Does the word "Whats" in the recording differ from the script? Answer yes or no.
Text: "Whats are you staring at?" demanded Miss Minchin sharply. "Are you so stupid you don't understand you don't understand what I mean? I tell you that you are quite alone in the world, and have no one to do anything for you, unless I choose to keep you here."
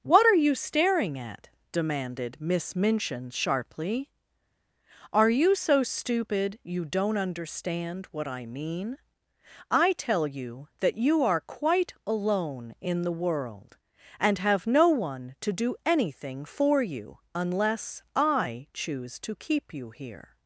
yes